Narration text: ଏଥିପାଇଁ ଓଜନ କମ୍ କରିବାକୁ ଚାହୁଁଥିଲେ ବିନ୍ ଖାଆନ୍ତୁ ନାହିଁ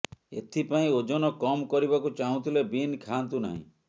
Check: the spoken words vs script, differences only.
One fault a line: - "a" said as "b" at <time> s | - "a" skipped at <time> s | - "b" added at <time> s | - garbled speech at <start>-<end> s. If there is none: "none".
none